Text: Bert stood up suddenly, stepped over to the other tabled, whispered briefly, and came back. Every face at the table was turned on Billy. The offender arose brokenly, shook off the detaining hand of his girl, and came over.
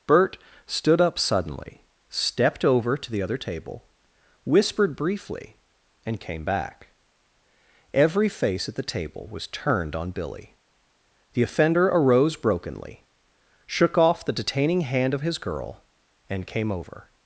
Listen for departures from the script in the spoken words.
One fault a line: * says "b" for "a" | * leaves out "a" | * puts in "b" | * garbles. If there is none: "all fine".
* says "table" for "tabled"